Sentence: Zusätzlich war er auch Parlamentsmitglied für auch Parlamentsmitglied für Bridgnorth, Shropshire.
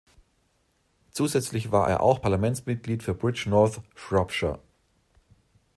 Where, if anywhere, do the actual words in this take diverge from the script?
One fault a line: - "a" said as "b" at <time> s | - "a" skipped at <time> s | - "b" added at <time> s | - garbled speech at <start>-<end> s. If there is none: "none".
- "auch Parlamentsmitglied für" skipped at 3.1 s